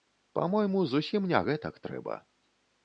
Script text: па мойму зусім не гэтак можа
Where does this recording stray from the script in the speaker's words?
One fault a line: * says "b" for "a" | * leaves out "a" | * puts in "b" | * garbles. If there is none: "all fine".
* says "трэба" for "можа"